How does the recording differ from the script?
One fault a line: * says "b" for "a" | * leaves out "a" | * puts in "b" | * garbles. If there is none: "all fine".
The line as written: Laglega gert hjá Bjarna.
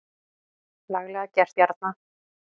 * leaves out "hjá"